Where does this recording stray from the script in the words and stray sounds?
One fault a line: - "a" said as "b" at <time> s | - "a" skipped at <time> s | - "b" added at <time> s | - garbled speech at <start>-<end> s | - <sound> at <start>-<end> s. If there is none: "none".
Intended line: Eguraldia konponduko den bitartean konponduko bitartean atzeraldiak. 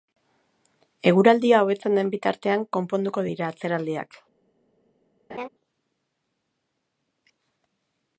- "konponduko" said as "hobetzen" at 1.6 s
- "bitartean" said as "dira" at 3.2 s
- laugh at 5.3-5.5 s